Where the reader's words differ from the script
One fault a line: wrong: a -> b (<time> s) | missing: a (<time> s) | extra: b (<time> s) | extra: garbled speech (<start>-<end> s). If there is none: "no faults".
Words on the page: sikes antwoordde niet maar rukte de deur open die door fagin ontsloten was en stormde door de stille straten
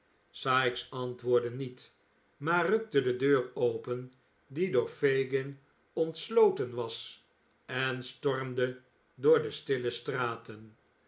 no faults